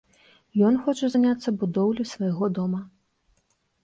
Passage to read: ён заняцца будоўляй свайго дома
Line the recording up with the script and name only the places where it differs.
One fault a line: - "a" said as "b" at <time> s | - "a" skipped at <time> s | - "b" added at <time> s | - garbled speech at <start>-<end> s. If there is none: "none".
- "хоча" added at 0.8 s